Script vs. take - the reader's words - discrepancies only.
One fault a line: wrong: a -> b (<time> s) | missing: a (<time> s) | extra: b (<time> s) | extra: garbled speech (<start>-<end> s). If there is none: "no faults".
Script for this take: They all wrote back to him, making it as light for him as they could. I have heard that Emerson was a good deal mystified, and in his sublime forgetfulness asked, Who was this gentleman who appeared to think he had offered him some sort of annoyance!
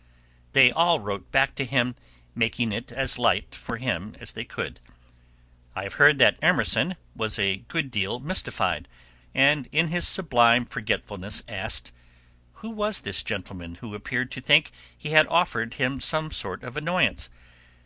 no faults